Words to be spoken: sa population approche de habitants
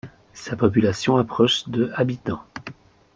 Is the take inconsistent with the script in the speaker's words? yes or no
no